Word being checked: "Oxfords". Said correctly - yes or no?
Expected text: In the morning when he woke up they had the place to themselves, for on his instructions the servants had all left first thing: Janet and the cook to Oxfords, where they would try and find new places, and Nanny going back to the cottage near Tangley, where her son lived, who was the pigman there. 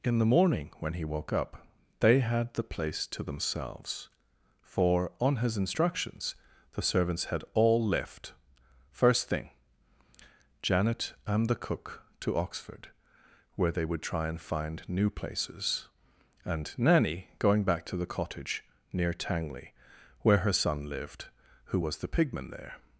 no